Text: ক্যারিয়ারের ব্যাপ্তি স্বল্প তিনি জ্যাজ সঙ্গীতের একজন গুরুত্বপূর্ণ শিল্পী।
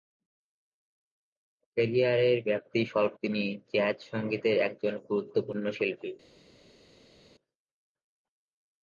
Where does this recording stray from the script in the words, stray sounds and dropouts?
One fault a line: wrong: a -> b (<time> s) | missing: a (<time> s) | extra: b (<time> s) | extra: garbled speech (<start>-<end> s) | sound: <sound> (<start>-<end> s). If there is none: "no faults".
no faults